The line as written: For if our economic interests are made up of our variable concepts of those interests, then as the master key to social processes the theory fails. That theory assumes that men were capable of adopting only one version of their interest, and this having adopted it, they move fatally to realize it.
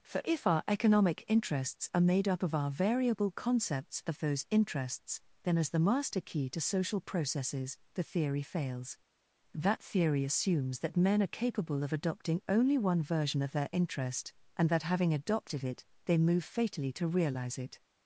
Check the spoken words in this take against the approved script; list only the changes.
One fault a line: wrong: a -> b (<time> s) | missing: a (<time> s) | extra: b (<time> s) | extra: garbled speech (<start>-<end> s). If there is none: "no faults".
wrong: were -> are (11.2 s)
wrong: this -> that (14.7 s)